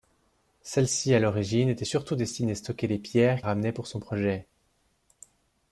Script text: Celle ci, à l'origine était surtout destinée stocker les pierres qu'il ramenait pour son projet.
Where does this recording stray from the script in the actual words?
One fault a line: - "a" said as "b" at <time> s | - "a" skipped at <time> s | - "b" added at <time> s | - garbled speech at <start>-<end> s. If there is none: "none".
- "qu'il" skipped at 3.4 s